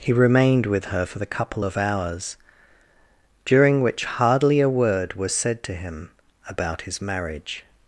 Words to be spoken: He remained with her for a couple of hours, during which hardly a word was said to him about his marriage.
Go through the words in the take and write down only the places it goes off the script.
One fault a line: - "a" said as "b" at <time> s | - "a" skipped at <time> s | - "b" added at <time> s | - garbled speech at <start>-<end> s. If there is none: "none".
- "a" said as "the" at 1.2 s